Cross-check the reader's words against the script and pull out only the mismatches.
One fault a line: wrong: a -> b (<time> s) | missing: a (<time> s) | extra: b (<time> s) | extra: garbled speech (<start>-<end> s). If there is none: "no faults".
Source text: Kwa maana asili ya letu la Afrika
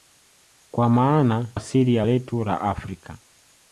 no faults